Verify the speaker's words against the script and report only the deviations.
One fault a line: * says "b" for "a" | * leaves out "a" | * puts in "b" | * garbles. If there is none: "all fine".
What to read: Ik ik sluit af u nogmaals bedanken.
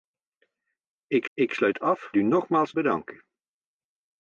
all fine